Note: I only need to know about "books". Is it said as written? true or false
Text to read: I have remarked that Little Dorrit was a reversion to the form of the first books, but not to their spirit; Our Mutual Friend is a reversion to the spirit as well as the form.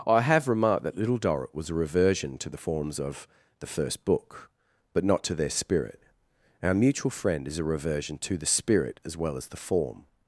false